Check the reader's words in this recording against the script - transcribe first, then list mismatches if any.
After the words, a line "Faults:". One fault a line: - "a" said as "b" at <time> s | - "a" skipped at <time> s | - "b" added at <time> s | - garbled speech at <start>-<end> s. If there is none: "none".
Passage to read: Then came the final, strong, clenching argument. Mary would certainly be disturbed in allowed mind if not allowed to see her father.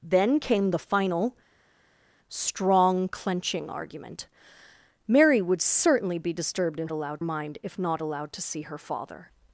Then came the final, strong, clenching argument. Mary would certainly be disturbed in allowed mind if not allowed to see her father.
Faults:
none